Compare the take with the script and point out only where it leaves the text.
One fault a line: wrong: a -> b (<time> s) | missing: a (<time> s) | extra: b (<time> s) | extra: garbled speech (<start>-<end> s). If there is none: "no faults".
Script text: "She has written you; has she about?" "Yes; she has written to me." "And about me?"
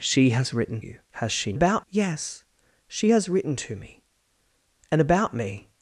no faults